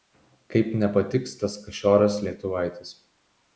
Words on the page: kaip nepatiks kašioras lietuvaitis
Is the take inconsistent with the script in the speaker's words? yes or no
yes